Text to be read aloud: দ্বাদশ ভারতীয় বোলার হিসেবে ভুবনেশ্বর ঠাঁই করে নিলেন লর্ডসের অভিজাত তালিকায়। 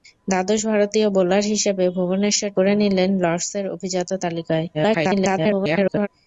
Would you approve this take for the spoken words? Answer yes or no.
no